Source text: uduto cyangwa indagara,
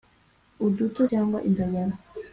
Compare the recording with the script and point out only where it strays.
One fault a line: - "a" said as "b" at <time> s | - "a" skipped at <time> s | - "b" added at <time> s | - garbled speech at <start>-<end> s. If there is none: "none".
none